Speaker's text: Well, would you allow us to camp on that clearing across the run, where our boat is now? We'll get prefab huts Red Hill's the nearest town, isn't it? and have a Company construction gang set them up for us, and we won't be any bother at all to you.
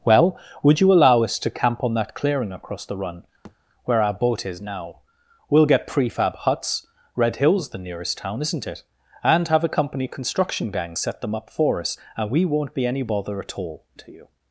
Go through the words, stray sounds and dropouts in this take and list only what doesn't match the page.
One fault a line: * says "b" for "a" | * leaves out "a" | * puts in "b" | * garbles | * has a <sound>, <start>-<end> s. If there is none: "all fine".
* has a thud, 3.4-3.6 s